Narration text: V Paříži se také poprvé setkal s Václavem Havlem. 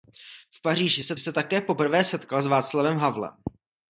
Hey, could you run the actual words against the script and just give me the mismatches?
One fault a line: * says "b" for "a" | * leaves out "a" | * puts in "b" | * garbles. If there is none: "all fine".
* puts in "se"